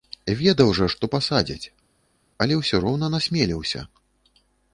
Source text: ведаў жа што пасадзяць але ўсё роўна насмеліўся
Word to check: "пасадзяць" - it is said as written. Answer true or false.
true